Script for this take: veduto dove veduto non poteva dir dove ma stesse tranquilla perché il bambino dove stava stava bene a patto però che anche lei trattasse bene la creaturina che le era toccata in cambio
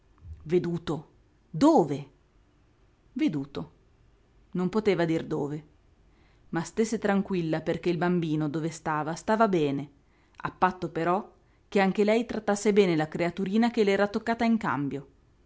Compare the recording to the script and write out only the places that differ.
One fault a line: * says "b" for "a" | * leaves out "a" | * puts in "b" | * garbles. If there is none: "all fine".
all fine